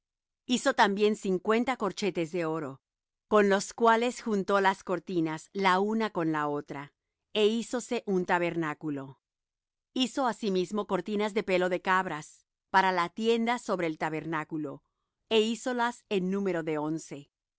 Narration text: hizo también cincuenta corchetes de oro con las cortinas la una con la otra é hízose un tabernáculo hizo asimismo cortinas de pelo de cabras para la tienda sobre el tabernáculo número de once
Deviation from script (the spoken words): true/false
true